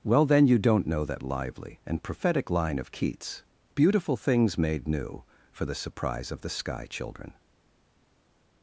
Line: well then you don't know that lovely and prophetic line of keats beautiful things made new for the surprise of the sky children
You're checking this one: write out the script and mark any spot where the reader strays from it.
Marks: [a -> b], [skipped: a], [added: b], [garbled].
well then you don't know that [lovely -> lively] and prophetic line of keats beautiful things made new for the surprise of the sky children